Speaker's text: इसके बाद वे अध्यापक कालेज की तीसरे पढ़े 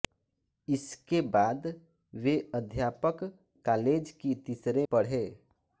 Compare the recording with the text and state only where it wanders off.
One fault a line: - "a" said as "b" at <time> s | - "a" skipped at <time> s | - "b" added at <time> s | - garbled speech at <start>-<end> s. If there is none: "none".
none